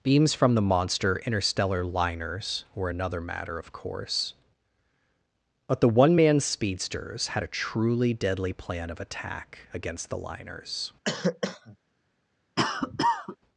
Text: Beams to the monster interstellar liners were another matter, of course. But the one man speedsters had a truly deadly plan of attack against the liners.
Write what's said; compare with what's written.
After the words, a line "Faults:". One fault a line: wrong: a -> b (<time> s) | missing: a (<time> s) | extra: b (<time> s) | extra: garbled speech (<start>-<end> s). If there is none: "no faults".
Beams from the monster interstellar liners were another matter, of course. But the one man speedsters had a truly deadly plan of attack against the liners.
Faults:
wrong: to -> from (0.3 s)